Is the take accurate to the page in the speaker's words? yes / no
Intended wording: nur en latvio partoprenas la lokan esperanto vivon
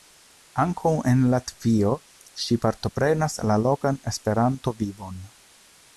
no